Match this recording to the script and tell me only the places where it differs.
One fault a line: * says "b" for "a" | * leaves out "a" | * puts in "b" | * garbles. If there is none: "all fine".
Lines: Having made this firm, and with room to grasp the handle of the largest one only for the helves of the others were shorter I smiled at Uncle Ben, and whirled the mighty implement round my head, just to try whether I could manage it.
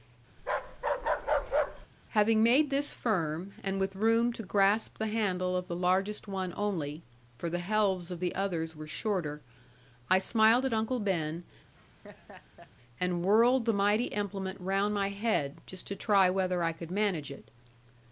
all fine